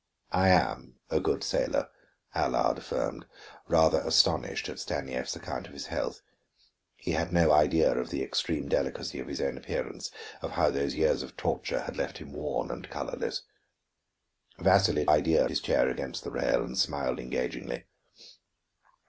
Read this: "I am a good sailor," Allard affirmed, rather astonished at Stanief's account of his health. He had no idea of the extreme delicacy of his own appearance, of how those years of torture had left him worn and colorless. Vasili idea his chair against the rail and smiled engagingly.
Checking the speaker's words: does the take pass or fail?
pass